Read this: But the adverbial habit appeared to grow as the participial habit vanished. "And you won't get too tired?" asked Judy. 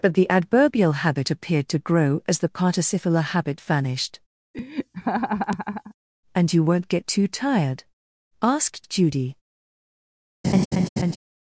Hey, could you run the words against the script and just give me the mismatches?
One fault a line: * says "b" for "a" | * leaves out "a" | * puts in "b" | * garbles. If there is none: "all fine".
all fine